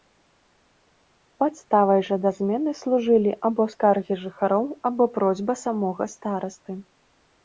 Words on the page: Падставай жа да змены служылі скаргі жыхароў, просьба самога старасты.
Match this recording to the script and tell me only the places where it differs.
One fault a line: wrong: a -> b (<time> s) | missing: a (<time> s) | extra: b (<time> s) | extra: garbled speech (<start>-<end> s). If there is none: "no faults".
extra: або (3.5 s)
extra: або (4.9 s)